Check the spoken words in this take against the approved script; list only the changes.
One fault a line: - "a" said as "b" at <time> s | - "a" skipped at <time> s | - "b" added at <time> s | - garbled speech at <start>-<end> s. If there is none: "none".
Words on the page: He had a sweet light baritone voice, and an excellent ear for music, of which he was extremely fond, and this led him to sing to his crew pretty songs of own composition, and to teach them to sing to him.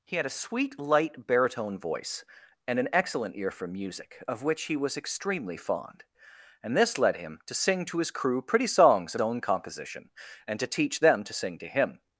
none